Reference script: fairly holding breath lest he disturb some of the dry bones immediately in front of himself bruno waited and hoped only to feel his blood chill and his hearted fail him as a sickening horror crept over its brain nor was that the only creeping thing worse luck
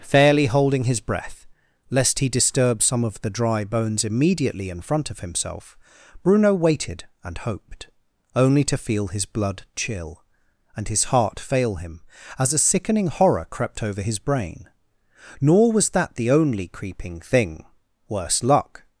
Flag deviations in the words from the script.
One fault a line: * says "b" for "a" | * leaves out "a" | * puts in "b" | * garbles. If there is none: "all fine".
* puts in "his"
* says "heart" for "hearted"
* says "his" for "its"